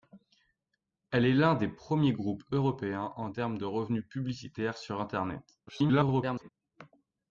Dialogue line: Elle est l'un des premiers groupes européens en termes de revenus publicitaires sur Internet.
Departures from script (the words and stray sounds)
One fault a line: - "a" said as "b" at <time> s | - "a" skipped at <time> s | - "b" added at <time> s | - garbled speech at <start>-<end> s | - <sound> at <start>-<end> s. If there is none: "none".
- garbled speech at 5.7-6.5 s